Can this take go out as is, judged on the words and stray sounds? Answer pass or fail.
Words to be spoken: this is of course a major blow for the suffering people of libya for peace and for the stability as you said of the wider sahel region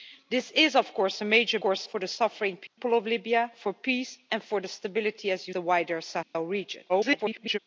fail